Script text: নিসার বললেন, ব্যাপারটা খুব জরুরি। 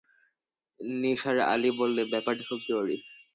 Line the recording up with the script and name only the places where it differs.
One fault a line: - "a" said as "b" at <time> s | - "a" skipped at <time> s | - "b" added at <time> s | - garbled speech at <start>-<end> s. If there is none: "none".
- "আলি" added at 1.5 s